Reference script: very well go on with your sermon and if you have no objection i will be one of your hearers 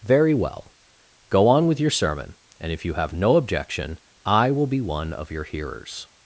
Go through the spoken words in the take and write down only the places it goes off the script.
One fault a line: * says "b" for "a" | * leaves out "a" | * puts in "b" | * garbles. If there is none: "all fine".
all fine